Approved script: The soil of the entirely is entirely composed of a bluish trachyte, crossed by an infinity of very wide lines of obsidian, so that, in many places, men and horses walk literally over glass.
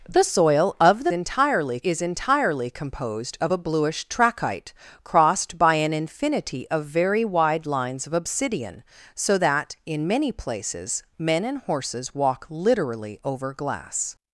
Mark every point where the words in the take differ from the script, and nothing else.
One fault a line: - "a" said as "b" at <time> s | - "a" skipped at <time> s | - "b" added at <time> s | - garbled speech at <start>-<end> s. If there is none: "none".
none